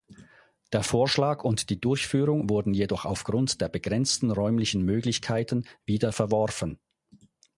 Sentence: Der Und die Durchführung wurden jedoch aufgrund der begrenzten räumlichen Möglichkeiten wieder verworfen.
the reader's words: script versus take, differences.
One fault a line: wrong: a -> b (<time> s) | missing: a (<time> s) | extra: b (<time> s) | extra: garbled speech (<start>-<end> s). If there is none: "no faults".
extra: Vorschlag (0.8 s)